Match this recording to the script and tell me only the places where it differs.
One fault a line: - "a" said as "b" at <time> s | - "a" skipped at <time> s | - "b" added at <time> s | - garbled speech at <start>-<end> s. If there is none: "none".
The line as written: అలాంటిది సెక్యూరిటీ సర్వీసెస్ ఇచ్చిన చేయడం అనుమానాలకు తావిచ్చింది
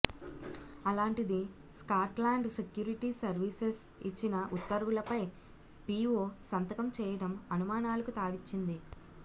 - "స్కాట్లాండ్" added at 1.8 s
- "ఉత్తర్వులపై పీఓ సంతకం" added at 4.5 s